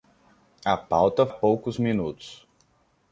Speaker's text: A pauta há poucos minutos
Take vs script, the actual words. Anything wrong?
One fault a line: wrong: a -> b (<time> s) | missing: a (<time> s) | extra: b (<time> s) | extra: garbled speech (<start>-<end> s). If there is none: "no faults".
no faults